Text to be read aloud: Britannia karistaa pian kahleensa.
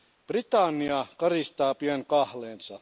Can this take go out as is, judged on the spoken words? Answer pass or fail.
pass